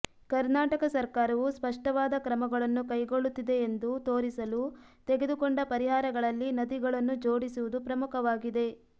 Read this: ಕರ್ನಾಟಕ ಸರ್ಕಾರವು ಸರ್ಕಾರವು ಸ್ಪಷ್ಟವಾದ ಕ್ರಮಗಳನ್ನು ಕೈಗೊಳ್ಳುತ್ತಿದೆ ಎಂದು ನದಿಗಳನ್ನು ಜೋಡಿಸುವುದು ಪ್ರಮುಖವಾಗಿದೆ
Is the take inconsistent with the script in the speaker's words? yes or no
yes